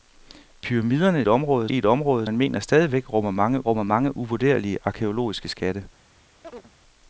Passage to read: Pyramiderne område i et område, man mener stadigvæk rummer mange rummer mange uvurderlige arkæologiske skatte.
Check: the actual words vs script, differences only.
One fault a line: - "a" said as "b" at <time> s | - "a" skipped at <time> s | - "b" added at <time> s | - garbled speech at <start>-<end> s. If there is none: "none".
none